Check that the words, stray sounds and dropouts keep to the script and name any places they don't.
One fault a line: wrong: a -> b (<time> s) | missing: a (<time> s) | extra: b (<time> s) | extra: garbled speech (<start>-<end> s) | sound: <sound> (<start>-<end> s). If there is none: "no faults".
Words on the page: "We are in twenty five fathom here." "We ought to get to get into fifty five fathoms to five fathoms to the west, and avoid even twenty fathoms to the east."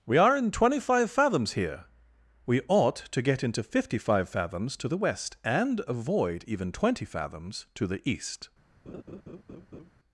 wrong: fathom -> fathoms (1.1 s)
missing: to get (3.4 s)
missing: five fathoms to (4.9 s)
sound: laugh (8.9-9.9 s)